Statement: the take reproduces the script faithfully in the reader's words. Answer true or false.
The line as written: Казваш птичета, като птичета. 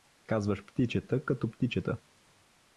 true